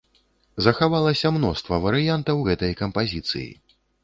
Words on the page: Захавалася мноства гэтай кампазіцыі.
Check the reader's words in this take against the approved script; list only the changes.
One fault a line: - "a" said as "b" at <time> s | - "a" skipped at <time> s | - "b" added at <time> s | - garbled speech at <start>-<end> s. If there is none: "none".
- "варыянтаў" added at 1.9 s